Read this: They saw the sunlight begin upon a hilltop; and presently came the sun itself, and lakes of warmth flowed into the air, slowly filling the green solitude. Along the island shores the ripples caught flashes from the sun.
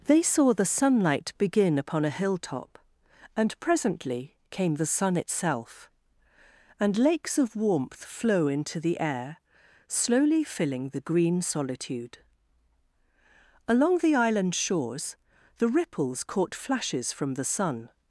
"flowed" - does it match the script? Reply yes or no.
no